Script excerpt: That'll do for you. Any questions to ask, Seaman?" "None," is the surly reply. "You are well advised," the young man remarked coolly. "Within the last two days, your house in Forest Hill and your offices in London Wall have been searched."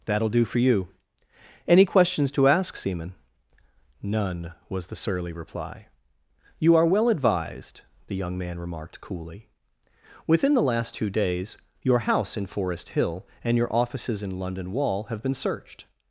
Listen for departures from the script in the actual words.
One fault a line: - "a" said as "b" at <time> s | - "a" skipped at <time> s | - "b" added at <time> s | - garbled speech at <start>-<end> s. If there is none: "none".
- "is" said as "was" at 4.7 s